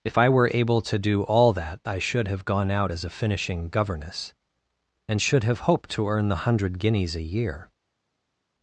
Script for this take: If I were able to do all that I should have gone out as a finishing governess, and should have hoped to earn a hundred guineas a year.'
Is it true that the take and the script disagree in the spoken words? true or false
true